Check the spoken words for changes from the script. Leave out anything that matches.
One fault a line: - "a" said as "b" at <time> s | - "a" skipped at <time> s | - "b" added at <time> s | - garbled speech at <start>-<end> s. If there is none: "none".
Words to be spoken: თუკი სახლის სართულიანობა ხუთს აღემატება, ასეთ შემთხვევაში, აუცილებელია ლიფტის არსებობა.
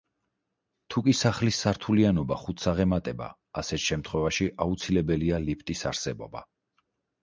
none